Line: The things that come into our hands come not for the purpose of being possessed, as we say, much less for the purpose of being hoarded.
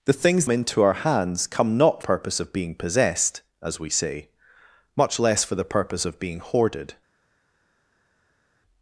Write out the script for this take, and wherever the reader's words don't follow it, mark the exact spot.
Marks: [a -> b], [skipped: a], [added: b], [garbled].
The things [skipped: that come] into our hands come not [skipped: for the] purpose of being possessed, as we say, much less for the purpose of being hoarded.